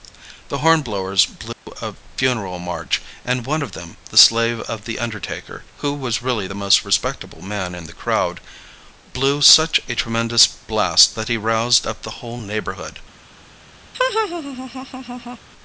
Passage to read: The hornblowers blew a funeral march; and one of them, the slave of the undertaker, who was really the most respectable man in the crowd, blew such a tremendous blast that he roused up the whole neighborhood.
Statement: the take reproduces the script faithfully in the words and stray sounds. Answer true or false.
false